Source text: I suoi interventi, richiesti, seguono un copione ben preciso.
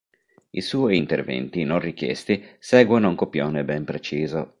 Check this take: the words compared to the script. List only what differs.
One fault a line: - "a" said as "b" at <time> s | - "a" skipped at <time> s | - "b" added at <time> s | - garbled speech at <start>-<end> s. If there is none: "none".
- "non" added at 1.6 s